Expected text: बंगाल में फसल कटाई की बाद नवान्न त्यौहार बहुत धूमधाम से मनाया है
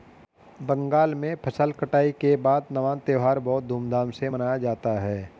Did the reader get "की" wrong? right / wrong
wrong